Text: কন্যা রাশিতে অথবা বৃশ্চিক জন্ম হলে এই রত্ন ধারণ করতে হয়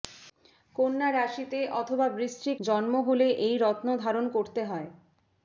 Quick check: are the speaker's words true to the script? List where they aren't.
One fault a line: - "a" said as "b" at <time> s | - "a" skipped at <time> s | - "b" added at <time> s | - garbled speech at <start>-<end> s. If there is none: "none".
none